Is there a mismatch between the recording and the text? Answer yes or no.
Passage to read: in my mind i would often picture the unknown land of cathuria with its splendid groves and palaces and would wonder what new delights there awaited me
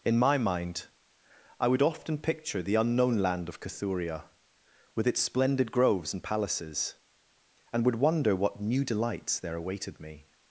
no